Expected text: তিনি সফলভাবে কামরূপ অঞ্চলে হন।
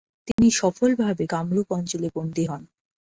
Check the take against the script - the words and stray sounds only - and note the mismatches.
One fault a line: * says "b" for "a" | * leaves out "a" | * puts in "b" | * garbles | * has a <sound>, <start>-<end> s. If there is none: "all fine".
* has a dropout, 0.3-0.4 s
* puts in "বন্দী"